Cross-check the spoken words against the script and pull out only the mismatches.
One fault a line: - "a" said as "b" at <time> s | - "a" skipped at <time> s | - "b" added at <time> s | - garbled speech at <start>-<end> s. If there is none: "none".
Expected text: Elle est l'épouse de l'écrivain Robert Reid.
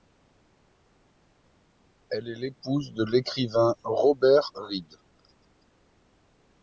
none